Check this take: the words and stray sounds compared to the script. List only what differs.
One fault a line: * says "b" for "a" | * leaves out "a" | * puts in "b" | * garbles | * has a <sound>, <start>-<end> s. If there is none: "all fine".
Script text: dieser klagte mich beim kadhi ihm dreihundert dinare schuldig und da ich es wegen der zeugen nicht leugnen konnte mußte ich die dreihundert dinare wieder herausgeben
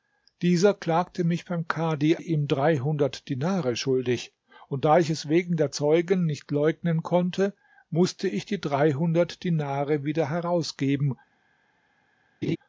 * has a laugh, 12.4-12.6 s